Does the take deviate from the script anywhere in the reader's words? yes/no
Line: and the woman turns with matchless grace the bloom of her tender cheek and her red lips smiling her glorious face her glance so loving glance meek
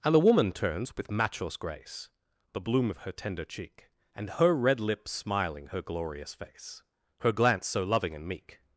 yes